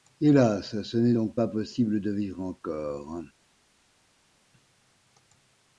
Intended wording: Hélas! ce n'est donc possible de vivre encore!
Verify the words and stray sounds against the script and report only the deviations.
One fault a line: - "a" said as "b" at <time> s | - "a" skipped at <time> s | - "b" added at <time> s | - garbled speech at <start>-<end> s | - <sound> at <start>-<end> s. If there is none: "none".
- "pas" added at 1.3 s